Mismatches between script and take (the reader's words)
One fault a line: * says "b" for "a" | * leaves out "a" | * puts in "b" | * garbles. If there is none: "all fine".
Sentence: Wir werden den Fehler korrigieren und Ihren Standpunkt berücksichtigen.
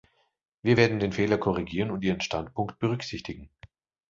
all fine